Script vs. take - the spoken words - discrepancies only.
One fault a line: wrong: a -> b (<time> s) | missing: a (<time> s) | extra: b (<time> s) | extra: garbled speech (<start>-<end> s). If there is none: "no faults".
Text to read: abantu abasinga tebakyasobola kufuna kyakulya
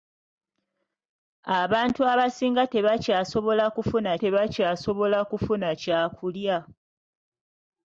extra: tebakyasobola kufuna (4.2 s)